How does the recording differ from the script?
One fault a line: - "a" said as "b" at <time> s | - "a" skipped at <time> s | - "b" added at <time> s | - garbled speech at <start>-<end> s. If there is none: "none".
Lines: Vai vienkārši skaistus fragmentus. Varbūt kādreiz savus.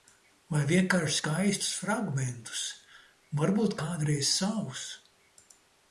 none